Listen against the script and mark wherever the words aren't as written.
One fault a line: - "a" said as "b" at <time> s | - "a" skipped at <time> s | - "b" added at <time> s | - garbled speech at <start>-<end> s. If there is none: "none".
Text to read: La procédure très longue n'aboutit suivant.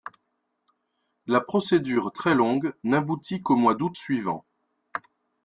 - "qu'au mois d'août" added at 3.4 s